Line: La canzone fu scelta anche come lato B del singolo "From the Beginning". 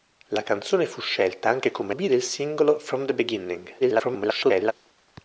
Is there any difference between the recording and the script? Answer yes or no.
yes